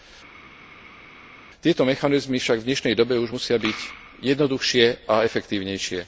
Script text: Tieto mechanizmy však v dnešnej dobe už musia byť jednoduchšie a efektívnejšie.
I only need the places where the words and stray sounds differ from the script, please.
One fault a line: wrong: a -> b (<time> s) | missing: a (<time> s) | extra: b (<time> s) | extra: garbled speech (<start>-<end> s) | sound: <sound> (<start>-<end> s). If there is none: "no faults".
no faults